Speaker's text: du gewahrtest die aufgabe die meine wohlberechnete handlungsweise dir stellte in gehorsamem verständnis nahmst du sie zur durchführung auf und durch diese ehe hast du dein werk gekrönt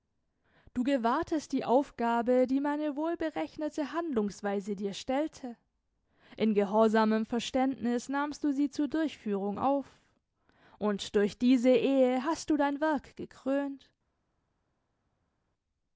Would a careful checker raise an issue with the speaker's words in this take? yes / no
no